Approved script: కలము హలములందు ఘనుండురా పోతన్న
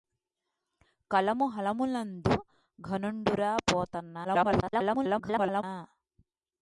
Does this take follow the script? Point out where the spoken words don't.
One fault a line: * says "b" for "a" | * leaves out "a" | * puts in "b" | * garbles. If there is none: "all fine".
* garbles